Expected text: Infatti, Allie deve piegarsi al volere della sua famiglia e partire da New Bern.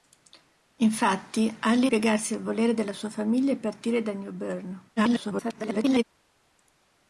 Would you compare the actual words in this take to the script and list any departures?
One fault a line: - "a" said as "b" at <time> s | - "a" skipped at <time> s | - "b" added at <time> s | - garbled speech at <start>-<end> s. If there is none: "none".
- "deve" skipped at 1.9 s
- garbled speech at 5.0-6.0 s